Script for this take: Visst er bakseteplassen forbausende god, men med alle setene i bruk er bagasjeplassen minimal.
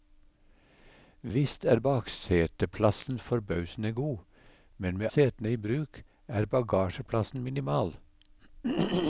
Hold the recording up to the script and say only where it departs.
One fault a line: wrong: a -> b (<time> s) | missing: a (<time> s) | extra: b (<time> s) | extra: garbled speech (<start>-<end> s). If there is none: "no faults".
missing: alle (5.1 s)